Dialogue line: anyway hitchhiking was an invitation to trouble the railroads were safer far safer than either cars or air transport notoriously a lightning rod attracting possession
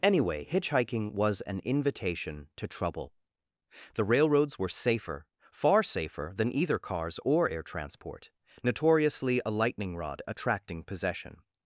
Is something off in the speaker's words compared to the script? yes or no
no